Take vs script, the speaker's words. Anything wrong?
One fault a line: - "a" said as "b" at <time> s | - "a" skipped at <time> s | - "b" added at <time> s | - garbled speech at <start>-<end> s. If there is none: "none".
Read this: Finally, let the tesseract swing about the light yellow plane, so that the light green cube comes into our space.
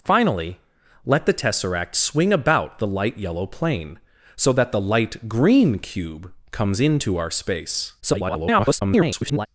- garbled speech at 8.0-9.5 s